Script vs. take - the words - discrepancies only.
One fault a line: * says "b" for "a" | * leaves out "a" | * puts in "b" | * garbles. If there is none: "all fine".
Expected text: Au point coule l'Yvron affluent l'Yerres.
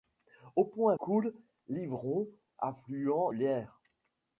all fine